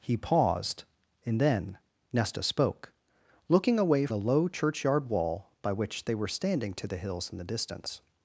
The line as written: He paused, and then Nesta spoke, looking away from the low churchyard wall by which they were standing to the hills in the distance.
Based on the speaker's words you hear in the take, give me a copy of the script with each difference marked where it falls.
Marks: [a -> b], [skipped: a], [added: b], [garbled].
He paused, and then Nesta spoke, looking away [skipped: from] the low churchyard wall by which they were standing to the hills in the distance.